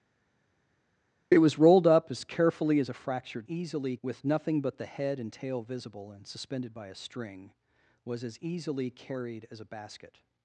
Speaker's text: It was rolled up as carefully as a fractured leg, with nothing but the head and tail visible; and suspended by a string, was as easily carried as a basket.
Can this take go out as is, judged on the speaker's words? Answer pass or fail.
fail